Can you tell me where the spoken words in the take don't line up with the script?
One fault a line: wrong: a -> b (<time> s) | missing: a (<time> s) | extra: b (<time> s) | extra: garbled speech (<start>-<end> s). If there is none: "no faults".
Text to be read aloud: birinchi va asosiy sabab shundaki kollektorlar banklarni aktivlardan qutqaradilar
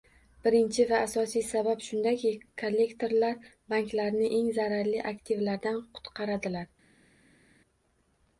extra: eng zararli (4.4 s)